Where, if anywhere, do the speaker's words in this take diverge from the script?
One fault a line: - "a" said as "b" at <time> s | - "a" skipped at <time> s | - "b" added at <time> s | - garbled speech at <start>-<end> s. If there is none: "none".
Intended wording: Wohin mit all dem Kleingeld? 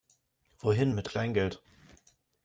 - "all dem" skipped at 1.1 s